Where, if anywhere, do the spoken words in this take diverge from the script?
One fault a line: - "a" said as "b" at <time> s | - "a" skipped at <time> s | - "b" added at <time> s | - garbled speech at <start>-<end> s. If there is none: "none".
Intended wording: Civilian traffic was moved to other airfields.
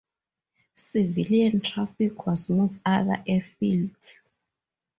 - "to" skipped at 2.9 s